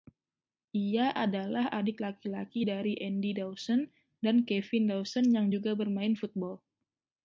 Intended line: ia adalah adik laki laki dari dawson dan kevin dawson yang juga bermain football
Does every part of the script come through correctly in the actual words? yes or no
no